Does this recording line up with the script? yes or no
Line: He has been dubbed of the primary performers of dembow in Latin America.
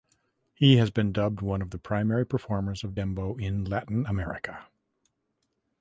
no